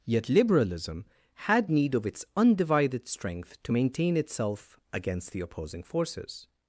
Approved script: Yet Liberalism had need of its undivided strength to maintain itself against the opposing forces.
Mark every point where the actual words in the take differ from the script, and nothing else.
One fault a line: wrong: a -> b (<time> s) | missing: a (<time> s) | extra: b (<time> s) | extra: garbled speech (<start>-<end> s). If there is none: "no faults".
no faults